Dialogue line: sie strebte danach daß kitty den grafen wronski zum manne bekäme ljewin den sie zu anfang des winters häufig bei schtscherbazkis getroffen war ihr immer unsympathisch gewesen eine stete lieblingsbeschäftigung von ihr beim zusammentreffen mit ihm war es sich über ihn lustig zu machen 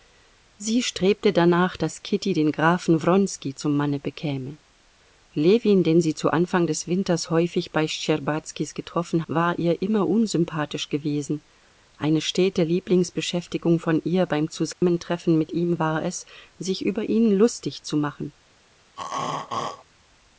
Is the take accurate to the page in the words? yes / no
yes